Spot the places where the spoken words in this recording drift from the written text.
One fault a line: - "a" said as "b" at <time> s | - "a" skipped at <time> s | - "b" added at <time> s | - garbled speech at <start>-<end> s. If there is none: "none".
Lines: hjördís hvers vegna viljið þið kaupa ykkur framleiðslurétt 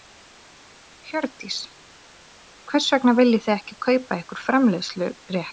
- "ekki" added at 3.6 s